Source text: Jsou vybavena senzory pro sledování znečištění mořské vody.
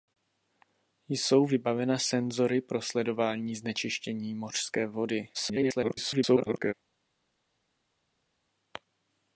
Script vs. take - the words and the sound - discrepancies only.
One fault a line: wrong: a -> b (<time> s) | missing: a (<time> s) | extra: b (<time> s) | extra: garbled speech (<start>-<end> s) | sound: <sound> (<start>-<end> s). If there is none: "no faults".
extra: garbled speech (5.3-6.7 s)